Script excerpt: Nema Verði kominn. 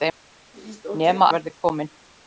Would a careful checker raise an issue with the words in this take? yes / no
no